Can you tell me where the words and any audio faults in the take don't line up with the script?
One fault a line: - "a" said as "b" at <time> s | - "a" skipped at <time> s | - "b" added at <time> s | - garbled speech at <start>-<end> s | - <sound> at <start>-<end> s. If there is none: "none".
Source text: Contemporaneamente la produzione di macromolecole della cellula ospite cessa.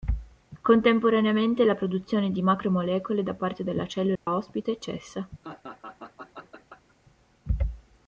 - "da parte" added at 3.2 s
- dropout at 4.2-4.3 s
- laugh at 5.4-7.0 s